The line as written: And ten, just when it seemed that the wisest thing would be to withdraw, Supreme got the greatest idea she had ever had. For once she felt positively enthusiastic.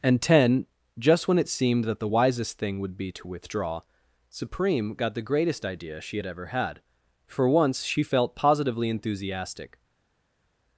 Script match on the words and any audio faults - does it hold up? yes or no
yes